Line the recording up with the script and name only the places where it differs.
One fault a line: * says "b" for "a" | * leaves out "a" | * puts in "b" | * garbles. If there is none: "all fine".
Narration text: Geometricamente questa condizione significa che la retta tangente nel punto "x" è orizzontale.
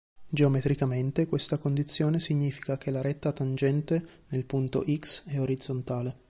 all fine